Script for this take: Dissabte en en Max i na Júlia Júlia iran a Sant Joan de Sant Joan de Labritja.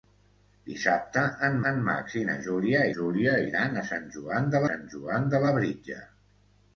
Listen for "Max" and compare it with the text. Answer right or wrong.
right